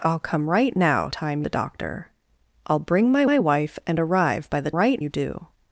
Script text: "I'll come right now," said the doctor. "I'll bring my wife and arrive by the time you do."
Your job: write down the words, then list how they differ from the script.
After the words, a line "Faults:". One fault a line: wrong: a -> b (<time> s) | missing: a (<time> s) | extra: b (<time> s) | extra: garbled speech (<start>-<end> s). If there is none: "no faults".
"I'll come right now," time the doctor. "I'll bring my my wife and arrive by the right you do."
Faults:
wrong: said -> time (1.1 s)
extra: my (3.2 s)
wrong: time -> right (4.8 s)